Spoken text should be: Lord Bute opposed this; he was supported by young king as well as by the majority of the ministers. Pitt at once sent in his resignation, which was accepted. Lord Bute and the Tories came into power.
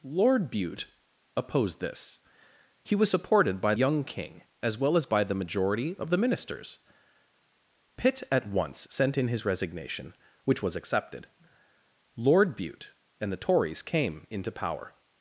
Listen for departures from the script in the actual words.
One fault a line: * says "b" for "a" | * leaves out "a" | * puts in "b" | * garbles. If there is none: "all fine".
all fine